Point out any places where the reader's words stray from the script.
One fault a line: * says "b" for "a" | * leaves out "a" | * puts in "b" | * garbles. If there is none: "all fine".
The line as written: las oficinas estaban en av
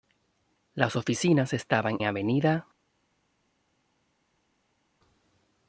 * leaves out "en"